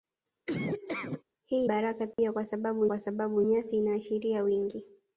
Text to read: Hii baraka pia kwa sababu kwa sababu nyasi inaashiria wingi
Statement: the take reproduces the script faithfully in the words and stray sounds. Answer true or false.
false